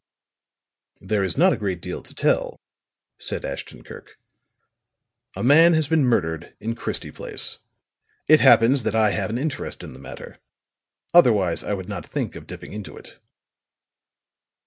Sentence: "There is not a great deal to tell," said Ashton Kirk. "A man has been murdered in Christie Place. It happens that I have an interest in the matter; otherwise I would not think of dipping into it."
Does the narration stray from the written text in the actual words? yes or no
no